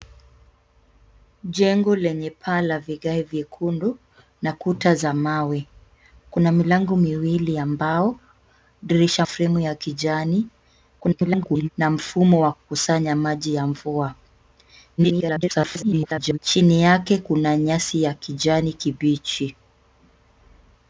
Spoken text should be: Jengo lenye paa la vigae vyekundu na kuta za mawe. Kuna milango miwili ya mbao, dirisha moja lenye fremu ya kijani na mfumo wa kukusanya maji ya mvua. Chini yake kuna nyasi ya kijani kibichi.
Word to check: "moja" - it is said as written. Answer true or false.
false